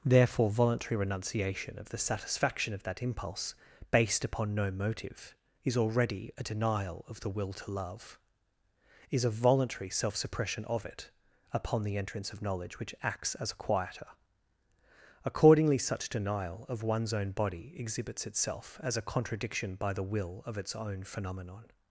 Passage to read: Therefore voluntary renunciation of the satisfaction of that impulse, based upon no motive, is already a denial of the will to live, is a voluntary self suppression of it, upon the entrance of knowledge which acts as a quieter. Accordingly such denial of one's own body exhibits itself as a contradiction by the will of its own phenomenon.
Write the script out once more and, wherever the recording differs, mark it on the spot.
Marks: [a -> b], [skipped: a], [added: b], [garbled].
Therefore voluntary renunciation of the satisfaction of that impulse, based upon no motive, is already a denial of the will to [live, -> love] is a voluntary self suppression of it, upon the entrance of knowledge which acts as a quieter. Accordingly such denial of one's own body exhibits itself as a contradiction by the will of its own phenomenon.